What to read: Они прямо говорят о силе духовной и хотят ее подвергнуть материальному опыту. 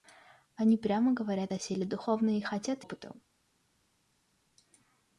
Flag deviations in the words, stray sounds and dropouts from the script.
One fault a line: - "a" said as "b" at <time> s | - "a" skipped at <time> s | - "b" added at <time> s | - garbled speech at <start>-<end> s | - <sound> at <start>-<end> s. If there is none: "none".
- "ее подвергнуть материальному" skipped at 2.8 s